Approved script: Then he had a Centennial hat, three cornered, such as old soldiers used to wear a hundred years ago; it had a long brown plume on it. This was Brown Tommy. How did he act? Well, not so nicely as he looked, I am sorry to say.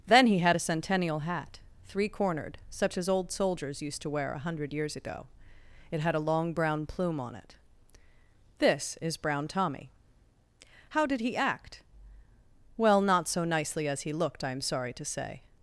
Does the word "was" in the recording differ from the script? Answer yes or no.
yes